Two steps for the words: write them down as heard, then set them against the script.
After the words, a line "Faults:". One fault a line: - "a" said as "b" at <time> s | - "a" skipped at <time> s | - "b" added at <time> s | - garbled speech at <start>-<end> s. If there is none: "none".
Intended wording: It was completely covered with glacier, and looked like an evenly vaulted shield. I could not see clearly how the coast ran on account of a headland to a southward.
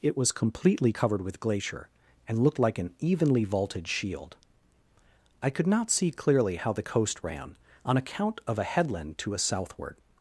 It was completely covered with glacier, and looked like an evenly vaulted shield. I could not see clearly how the coast ran on account of a headland to a southward.
Faults:
none